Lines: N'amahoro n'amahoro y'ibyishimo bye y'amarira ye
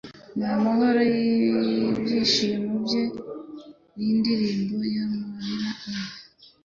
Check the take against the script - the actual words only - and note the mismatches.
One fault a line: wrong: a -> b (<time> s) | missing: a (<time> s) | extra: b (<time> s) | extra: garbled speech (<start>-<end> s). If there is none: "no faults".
missing: n'amahoro (1.0 s)
extra: n'indirimbo (4.0 s)